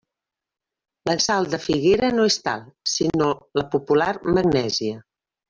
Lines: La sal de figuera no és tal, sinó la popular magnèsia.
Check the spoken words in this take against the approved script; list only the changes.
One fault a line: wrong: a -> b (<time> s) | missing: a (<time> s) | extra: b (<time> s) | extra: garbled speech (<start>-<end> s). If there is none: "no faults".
no faults